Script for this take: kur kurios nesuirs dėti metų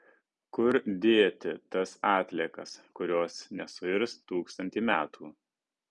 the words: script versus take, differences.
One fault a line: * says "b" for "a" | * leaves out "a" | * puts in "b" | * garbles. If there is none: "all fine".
* puts in "dėti tas atliekas"
* says "tūkstantį" for "dėti"